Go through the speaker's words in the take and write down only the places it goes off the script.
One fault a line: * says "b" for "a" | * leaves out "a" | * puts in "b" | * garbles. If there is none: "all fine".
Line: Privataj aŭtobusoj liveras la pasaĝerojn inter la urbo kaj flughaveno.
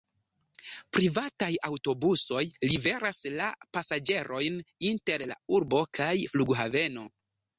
all fine